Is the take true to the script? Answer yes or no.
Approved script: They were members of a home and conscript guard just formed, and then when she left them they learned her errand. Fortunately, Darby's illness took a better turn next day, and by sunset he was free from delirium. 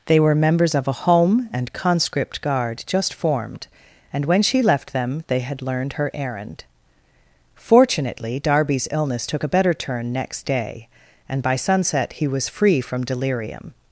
no